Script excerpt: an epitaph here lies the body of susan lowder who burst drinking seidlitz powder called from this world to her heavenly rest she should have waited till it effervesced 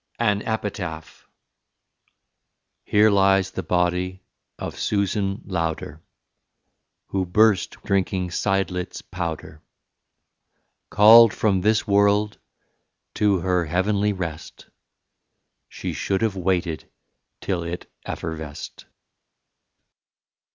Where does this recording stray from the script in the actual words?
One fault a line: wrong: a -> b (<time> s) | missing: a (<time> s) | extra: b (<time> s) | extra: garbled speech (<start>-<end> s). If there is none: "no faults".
no faults